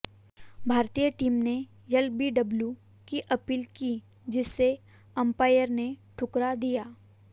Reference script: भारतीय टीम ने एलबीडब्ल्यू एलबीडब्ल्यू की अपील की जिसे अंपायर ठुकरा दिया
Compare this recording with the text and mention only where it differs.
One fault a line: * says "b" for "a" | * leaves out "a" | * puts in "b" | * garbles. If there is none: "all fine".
* leaves out "एलबीडब्ल्यू"
* puts in "ने"